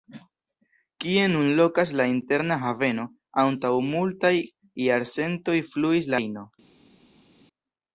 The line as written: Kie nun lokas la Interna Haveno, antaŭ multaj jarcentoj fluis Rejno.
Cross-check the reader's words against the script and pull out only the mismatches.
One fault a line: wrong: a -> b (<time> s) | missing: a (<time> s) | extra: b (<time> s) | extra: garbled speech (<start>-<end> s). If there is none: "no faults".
no faults